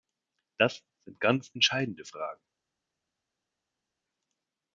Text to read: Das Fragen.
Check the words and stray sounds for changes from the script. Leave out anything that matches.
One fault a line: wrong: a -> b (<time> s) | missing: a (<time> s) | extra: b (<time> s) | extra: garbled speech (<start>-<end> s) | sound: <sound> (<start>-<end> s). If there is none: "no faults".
extra: sind ganz entscheidende (1.0 s)